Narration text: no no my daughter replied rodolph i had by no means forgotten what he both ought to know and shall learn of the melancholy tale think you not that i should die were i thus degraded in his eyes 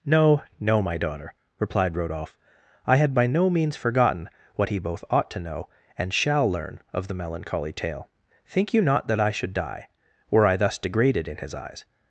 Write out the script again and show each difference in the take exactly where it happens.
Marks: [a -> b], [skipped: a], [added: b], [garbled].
no no my daughter replied rodolph i had by no means forgotten what he both ought to know and shall learn of the melancholy tale think you not that i should die were i thus degraded in his eyes